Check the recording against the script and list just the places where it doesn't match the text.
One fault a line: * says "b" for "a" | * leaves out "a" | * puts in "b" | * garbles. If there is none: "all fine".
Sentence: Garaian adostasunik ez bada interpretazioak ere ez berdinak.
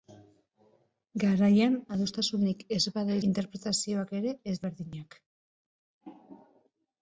all fine